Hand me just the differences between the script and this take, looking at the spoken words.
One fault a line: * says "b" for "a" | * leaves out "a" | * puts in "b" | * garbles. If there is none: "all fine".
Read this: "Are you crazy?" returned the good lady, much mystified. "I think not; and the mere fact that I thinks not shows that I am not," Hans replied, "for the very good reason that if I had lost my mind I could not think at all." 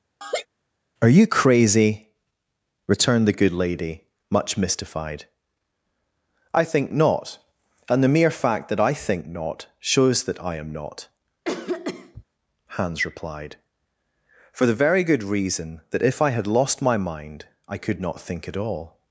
* says "think" for "thinks"